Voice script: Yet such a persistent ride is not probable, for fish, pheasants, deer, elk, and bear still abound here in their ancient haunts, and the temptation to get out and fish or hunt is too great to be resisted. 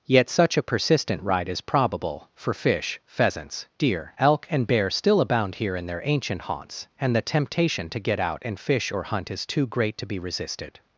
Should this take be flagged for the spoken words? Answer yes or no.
yes